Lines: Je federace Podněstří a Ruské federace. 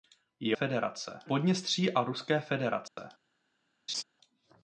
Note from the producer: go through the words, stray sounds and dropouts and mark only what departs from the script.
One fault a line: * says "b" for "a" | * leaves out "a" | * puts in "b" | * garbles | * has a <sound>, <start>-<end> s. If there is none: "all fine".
* has a dropout, 2.9-3.0 s
* has a laugh, 3.9-4.0 s